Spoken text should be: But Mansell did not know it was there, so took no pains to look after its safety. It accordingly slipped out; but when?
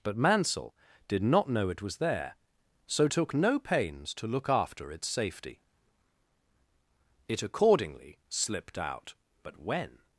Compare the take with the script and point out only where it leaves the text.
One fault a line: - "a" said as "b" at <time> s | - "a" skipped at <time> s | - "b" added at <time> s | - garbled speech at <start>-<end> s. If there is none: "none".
none